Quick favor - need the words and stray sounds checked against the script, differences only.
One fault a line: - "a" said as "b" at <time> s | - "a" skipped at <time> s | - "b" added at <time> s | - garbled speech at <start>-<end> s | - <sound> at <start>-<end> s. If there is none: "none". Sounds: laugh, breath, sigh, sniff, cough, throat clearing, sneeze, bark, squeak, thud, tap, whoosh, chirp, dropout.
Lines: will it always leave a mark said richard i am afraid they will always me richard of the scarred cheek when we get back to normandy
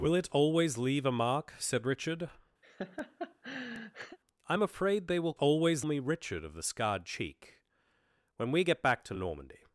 - laugh at 2.6-4.2 s